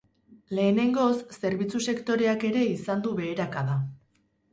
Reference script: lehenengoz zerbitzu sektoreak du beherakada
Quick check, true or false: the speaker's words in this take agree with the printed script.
false